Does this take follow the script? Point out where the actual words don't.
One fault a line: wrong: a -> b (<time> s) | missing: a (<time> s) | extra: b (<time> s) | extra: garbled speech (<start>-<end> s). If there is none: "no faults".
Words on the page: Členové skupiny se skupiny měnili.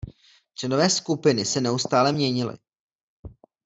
wrong: skupiny -> neustále (1.6 s)